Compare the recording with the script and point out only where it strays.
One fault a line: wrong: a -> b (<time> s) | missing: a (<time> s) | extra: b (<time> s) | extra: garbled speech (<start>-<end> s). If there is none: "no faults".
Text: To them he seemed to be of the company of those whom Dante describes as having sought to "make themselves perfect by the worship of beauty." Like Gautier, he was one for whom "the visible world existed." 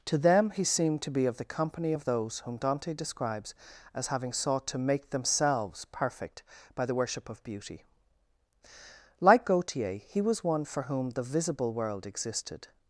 no faults